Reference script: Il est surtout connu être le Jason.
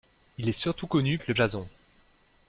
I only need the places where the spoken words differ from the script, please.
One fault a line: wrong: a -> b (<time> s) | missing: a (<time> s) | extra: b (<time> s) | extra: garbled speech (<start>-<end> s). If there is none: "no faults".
no faults